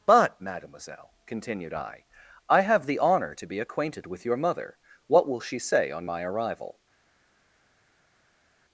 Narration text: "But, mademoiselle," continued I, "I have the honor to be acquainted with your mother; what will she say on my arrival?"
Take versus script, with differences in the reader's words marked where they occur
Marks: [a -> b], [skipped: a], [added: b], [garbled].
"But, mademoiselle," continued I, "I have the honor to be acquainted with your mother; what will she say on my arrival?"